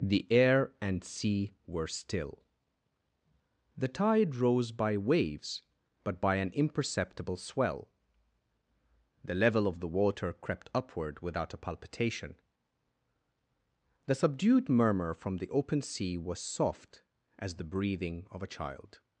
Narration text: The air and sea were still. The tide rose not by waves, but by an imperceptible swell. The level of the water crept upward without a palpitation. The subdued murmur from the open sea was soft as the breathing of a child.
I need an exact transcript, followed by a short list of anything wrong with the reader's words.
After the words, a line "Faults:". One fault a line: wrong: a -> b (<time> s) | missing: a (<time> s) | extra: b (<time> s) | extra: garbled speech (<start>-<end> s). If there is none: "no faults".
The air and sea were still. The tide rose by waves, but by an imperceptible swell. The level of the water crept upward without a palpitation. The subdued murmur from the open sea was soft as the breathing of a child.
Faults:
missing: not (4.7 s)